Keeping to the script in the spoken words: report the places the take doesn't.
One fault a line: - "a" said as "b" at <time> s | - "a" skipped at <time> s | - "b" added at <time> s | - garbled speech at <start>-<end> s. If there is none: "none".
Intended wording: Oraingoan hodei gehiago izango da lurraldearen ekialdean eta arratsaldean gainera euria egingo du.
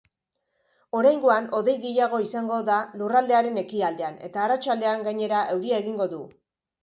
none